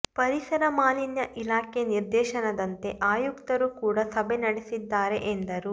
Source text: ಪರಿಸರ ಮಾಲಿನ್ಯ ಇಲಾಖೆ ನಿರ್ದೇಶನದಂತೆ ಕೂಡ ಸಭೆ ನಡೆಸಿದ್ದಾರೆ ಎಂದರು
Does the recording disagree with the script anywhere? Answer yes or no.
yes